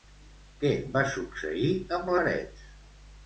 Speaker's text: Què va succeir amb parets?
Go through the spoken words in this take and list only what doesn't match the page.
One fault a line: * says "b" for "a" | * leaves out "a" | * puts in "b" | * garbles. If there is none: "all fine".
all fine